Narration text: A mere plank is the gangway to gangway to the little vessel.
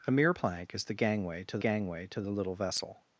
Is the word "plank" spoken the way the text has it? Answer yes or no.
yes